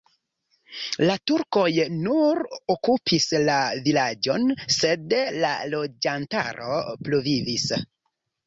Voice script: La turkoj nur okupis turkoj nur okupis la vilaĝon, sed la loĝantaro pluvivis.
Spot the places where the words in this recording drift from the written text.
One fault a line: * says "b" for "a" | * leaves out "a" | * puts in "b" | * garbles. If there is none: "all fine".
* leaves out "turkoj nur okupis"